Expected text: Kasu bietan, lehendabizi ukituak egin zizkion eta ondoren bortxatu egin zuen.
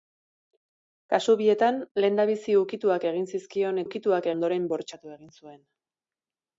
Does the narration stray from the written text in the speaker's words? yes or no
yes